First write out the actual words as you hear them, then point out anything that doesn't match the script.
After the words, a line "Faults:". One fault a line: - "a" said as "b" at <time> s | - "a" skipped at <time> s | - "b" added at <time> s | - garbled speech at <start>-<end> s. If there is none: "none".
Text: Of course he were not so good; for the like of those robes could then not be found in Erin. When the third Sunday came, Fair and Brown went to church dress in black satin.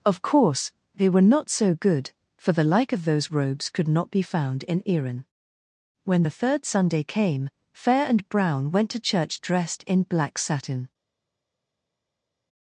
Of course they were not so good; for the like of those robes could not be found in Erin. When the third Sunday came, Fair and Brown went to church dressed in black satin.
Faults:
- "he" said as "they" at 0.9 s
- "then" skipped at 3.9 s
- "dress" said as "dressed" at 9.4 s